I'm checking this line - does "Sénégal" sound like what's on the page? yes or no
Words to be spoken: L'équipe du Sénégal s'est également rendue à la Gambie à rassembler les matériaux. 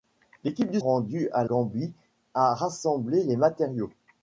no